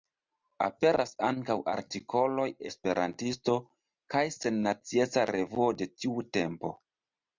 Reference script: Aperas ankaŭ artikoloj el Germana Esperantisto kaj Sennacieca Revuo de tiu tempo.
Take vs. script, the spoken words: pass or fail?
fail